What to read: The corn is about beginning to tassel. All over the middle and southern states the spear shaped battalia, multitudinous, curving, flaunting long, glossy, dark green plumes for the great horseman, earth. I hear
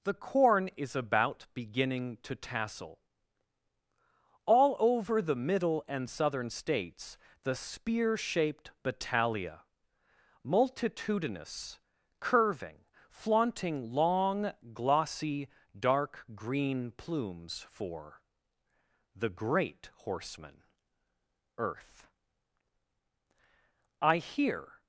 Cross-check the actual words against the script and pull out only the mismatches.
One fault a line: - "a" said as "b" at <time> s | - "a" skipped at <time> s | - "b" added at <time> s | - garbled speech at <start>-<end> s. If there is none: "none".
none